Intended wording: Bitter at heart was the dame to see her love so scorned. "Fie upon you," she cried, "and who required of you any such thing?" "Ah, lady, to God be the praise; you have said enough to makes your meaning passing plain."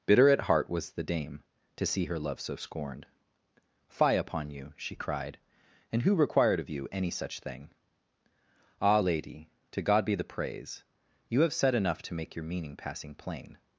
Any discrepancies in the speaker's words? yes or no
yes